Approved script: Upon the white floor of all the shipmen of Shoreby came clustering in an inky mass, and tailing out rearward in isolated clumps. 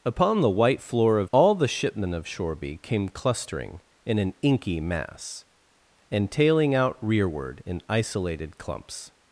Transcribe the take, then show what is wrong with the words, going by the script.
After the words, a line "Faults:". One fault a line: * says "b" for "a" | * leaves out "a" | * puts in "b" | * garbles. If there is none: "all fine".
Upon the white floor of all the shipmen of Shoreby came clustering in an inky mass, and tailing out rearward in isolated clumps.
Faults:
all fine